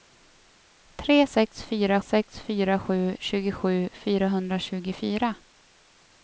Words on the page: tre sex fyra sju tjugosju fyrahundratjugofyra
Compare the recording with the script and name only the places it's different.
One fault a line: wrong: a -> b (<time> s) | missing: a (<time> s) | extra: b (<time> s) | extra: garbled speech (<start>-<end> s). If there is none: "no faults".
extra: sex fyra (2.1 s)